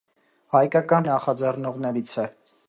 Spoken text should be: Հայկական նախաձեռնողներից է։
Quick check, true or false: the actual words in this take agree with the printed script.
true